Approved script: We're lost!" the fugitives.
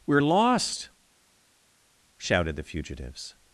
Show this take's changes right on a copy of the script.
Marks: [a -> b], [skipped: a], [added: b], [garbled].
We're lost!" [added: shouted] the fugitives.